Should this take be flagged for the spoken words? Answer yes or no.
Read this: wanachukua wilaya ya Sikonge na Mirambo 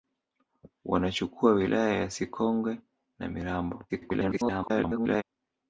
yes